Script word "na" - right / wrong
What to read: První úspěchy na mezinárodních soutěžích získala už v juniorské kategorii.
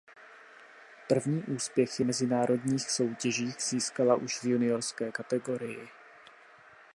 wrong